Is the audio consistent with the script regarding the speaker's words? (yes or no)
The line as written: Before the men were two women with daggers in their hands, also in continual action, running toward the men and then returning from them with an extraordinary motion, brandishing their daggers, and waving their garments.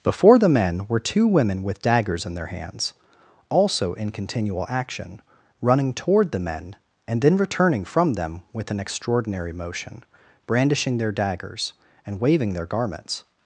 yes